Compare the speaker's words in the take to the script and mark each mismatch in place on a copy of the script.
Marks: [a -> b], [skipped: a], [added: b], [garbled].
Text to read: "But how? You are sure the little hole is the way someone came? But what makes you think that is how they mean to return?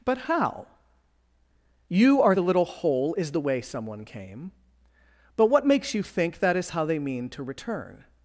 "But how? You are [skipped: sure] the little hole is the way someone came? But what makes you think that is how they mean to return?